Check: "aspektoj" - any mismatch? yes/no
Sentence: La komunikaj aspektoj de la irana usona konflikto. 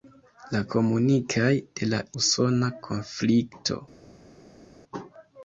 yes